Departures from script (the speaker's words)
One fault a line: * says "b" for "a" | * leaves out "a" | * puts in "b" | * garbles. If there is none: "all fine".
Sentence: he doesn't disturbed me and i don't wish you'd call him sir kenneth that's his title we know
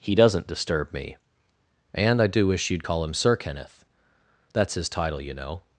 * says "disturb" for "disturbed"
* says "do" for "don't"
* says "you" for "we"